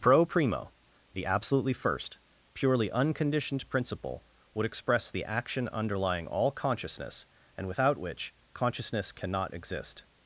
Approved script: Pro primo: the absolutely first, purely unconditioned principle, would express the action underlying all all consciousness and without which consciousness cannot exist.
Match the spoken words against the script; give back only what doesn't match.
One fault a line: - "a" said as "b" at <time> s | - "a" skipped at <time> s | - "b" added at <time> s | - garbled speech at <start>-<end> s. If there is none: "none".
- "all" skipped at 6.5 s